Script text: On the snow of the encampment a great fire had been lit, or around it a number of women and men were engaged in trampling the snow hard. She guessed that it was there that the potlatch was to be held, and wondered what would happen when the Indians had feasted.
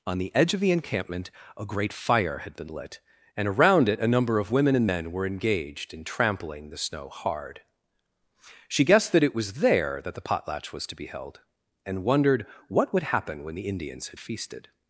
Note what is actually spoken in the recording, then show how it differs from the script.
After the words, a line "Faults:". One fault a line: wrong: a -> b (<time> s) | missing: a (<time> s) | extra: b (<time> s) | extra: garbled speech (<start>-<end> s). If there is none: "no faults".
On the edge of the encampment a great fire had been lit, and around it a number of women and men were engaged in trampling the snow hard. She guessed that it was there that the potlatch was to be held, and wondered what would happen when the Indians had feasted.
Faults:
wrong: snow -> edge (0.3 s)
wrong: or -> and (3.4 s)